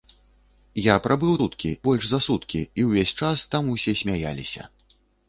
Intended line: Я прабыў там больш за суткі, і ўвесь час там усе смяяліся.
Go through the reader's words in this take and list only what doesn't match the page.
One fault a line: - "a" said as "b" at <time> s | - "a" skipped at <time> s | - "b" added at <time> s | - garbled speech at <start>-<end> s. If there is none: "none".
- "там" said as "суткі" at 1.4 s